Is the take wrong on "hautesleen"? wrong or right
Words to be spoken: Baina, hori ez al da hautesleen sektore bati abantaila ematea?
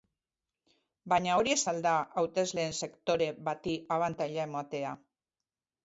right